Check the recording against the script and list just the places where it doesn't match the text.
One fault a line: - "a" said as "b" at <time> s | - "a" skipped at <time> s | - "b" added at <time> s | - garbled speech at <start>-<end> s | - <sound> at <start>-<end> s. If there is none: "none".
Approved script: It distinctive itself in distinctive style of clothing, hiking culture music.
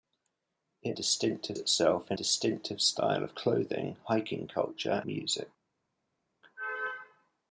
none